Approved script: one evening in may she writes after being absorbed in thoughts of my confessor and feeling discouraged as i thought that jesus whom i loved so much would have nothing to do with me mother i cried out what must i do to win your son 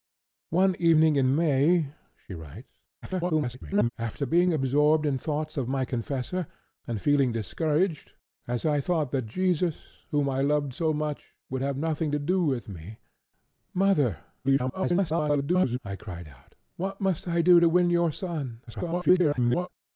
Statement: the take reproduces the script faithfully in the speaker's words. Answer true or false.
false